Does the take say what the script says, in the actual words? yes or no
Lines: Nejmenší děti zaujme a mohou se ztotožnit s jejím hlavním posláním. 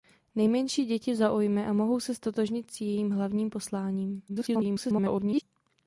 no